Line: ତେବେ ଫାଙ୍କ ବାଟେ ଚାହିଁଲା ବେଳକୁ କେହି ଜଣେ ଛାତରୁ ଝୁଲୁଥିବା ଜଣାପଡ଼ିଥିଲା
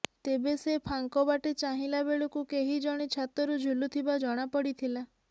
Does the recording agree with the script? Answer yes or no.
no